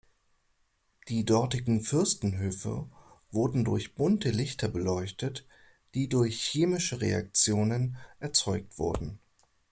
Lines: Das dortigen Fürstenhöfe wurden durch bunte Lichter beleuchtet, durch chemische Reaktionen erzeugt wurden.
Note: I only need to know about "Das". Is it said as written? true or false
false